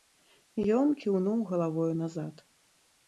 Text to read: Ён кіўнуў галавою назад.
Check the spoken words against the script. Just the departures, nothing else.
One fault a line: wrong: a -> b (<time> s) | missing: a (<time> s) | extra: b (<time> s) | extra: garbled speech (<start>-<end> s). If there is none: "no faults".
no faults